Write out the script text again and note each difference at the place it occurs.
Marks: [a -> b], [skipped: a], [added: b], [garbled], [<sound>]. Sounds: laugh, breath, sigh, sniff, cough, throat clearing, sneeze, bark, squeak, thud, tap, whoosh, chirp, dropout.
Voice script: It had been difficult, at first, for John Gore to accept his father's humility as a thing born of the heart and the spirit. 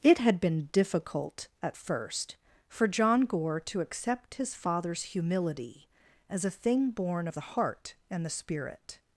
It had been difficult, at first, for John Gore to accept his father's humility as a thing born of the heart and the spirit.